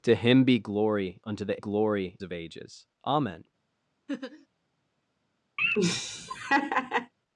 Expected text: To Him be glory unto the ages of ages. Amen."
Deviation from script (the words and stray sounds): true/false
true